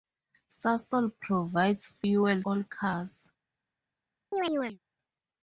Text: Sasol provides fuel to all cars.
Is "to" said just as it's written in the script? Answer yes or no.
no